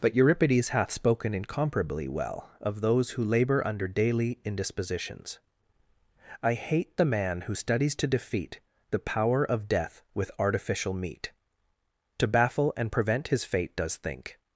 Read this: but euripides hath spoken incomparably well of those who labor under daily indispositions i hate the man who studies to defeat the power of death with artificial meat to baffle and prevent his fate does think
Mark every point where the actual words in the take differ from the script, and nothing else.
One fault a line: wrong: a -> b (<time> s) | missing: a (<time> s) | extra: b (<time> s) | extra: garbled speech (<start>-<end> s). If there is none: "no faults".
no faults